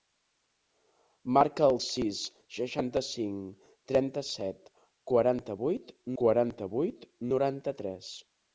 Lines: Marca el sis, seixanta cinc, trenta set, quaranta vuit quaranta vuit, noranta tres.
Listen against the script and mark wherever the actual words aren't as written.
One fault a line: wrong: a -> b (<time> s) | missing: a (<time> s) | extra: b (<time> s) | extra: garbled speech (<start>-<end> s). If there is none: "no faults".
no faults